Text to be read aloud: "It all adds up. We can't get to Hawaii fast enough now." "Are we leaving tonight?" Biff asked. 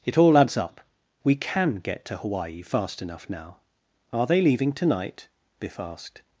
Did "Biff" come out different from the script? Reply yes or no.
no